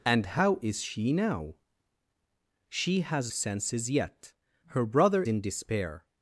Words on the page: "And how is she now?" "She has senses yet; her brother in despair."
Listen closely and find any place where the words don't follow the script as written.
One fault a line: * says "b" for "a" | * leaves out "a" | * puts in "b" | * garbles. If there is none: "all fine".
all fine